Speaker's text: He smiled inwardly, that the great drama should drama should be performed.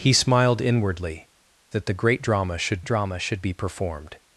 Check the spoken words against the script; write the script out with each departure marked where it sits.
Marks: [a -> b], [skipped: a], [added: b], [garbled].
He smiled inwardly, that the great drama should drama should be performed.